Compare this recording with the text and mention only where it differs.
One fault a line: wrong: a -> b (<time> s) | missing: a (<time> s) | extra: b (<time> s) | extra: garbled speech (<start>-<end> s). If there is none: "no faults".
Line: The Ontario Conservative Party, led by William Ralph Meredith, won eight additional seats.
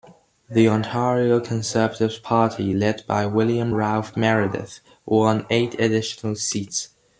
no faults